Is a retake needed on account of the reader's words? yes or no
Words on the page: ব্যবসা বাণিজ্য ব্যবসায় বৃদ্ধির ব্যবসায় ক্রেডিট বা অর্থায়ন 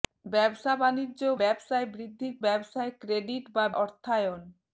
no